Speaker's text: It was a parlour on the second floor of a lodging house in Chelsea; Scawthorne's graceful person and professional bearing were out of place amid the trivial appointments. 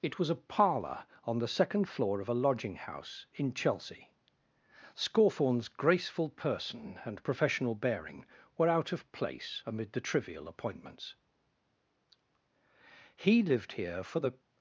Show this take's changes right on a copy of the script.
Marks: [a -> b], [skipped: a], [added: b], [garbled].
It was a parlour on the second floor of a lodging house in Chelsea; Scawthorne's graceful person and professional bearing were out of place amid the trivial appointments. [added: He lived here for the]